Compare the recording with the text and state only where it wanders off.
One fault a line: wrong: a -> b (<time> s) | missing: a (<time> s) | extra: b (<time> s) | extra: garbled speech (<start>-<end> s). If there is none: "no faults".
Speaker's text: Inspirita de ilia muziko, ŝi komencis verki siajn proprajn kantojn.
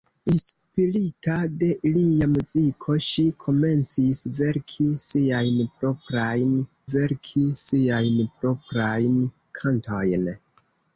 extra: verki siajn proprajn (7.0 s)